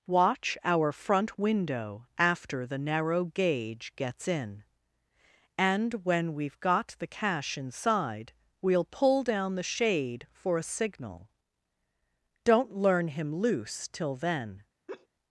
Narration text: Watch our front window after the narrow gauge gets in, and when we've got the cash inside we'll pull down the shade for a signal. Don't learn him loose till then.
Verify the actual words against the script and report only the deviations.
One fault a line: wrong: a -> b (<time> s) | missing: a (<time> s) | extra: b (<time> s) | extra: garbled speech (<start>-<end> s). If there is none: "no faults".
no faults